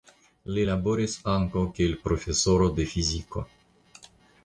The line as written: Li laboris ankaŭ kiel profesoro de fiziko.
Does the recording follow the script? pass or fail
pass